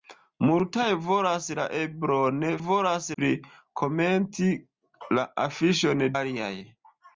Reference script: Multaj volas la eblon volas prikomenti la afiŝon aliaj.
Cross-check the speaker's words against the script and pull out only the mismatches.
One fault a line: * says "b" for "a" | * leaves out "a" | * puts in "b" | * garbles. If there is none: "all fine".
all fine